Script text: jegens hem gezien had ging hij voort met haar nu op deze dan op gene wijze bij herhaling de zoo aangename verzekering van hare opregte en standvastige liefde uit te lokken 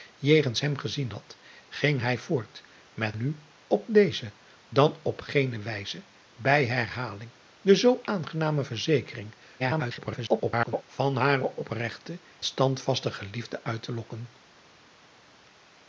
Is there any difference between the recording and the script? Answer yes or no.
yes